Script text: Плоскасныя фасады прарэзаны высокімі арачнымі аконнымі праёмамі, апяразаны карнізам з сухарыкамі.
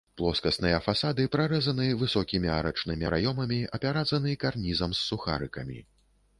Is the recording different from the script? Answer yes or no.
yes